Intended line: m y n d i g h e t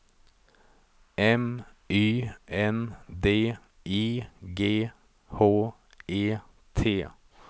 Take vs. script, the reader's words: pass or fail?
pass